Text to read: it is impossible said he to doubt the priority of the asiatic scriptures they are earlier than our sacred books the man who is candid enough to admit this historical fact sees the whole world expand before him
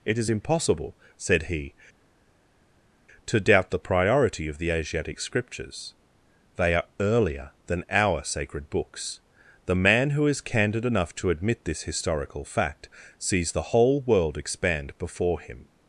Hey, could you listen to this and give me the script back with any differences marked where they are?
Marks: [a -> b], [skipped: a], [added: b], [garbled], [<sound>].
it is impossible said he to doubt the priority of the asiatic scriptures they are earlier than our sacred books the man who is candid enough to admit this historical fact sees the whole world expand before him